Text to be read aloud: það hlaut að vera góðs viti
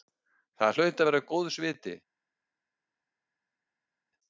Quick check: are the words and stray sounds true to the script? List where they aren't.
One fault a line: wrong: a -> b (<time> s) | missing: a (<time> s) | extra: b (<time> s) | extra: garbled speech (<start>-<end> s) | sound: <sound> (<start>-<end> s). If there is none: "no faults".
no faults